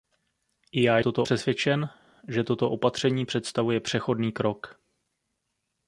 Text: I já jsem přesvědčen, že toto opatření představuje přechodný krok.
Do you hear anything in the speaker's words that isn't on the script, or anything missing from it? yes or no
yes